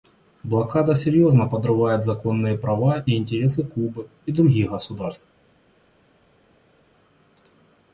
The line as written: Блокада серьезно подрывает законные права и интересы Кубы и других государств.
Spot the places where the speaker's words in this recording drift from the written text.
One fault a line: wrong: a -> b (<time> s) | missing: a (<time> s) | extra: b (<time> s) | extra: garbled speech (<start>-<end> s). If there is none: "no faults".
no faults